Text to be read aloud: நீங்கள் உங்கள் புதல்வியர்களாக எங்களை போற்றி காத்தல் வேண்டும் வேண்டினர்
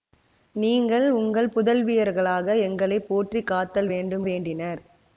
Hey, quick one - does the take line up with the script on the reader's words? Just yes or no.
yes